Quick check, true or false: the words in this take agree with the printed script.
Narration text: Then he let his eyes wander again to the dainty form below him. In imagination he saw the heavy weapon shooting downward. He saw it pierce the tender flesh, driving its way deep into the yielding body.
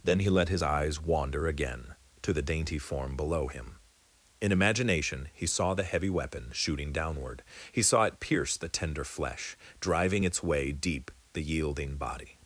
false